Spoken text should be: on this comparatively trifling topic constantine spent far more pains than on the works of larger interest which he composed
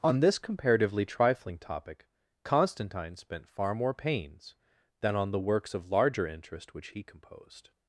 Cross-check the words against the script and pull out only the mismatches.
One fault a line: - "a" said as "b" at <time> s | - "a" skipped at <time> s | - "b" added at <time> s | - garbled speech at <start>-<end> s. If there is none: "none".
none